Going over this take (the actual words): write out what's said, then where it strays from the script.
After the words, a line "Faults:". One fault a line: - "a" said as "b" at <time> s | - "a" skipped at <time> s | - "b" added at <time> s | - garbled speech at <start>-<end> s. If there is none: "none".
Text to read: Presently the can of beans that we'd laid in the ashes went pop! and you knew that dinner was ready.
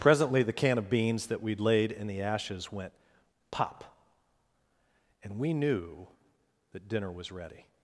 Presently the can of beans that we'd laid in the ashes went pop! and we knew that dinner was ready.
Faults:
- "you" said as "we" at 5.4 s